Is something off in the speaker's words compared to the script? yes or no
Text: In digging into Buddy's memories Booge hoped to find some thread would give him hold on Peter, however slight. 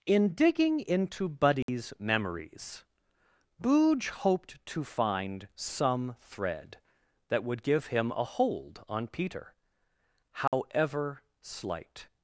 yes